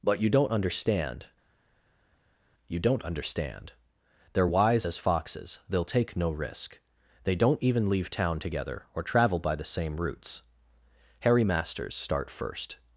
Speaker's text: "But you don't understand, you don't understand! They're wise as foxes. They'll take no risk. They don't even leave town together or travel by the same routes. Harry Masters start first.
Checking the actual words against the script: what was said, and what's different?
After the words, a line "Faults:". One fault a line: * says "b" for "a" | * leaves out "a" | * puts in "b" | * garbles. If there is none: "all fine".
"But you don't understand, you don't understand! They're wise as foxes. They'll take no risk. They don't even leave town together or travel by the same routes. Harry Masters start first.
Faults:
all fine